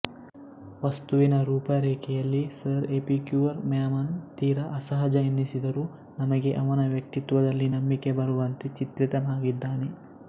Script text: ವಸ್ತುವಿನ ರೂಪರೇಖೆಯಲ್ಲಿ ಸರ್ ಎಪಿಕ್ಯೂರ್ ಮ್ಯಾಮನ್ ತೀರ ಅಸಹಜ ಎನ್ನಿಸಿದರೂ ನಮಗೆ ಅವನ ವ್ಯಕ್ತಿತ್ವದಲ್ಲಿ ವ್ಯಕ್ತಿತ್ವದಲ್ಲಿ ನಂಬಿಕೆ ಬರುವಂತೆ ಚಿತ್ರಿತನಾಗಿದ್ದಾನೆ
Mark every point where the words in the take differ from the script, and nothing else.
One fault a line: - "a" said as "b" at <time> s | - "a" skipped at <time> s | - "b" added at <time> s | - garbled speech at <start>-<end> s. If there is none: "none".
- "ವ್ಯಕ್ತಿತ್ವದಲ್ಲಿ" skipped at 7.7 s